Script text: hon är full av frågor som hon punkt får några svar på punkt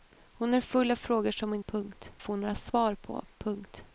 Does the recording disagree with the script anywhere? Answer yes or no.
no